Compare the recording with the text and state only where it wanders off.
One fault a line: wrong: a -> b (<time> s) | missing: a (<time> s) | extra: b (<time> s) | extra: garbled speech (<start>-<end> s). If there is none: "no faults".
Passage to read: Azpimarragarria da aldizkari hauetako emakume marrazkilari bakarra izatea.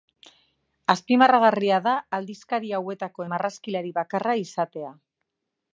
missing: emakume (3.3 s)